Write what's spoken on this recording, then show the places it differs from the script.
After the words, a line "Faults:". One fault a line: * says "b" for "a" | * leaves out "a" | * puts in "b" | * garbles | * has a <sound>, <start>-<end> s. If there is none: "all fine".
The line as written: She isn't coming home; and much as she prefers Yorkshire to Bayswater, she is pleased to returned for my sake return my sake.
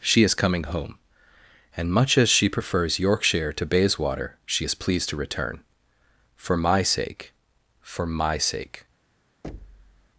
She is coming home; and much as she prefers Yorkshire to Bayswater, she is pleased to return for my sake for my sake.
Faults:
* says "is" for "isn't"
* says "return" for "returned"
* says "for" for "return"
* has a thud, 9.4-10.1 s